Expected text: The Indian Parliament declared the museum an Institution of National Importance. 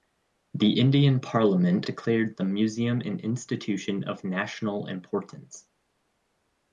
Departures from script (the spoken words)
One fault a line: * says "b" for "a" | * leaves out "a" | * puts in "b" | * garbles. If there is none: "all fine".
all fine